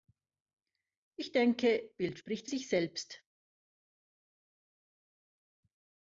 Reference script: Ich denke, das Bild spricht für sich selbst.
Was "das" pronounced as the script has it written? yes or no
no